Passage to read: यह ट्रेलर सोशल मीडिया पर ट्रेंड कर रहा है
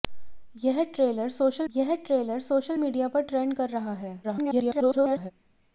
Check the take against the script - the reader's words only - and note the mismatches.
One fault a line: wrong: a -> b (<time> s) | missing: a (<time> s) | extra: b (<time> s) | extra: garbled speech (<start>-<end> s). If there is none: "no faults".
extra: यह ट्रेलर सोशल (1.7 s)
extra: garbled speech (4.2-5.3 s)